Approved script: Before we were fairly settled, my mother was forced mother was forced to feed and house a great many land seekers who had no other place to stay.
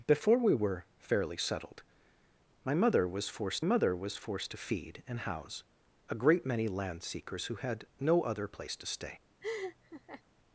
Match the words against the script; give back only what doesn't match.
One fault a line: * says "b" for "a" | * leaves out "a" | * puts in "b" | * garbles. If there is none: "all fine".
all fine